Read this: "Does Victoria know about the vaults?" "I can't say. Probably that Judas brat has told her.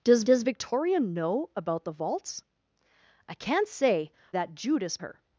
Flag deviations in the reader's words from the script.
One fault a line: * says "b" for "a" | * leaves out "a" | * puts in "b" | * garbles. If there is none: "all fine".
* puts in "does"
* leaves out "Probably"
* leaves out "brat has told"